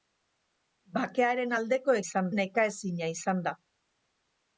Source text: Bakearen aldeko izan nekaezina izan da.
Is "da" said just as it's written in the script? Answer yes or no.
yes